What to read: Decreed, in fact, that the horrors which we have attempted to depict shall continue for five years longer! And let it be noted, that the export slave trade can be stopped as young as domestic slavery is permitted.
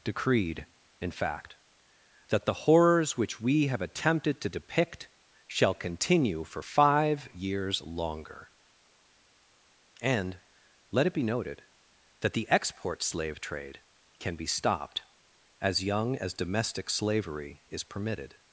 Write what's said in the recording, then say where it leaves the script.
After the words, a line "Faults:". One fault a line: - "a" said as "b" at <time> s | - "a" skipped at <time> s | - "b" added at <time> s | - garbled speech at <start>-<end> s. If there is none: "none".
Decreed, in fact, that the horrors which we have attempted to depict shall continue for five years longer! And let it be noted, that the export slave trade can be stopped as young as domestic slavery is permitted.
Faults:
none